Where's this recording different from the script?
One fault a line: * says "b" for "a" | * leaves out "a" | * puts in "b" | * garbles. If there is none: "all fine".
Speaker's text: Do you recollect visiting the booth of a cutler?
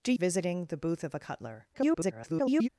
* leaves out "you recollect"
* garbles